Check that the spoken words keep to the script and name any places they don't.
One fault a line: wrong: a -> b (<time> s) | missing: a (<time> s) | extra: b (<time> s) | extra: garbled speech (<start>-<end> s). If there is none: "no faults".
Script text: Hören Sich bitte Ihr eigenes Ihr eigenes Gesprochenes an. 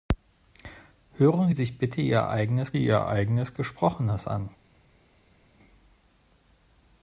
no faults